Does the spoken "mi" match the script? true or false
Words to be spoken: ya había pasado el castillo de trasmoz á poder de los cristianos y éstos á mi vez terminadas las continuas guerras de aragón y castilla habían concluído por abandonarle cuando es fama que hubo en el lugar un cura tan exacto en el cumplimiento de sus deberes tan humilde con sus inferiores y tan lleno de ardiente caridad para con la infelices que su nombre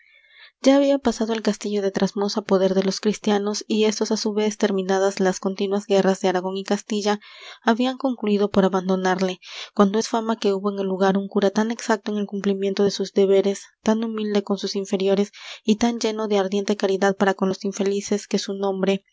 false